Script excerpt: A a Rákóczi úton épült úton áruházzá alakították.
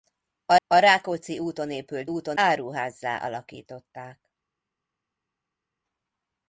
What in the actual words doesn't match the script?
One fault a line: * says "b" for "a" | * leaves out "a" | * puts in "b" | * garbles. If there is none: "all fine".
all fine